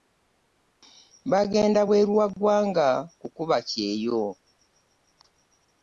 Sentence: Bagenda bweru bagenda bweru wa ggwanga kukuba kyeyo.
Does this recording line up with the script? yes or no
no